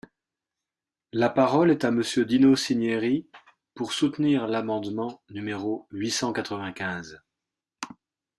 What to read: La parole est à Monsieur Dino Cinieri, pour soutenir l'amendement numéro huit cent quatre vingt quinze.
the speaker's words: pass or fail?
pass